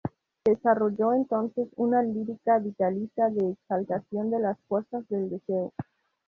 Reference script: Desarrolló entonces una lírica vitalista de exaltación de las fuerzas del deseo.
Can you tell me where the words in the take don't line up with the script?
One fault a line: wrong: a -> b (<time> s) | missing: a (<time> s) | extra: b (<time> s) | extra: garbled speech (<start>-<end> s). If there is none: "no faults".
no faults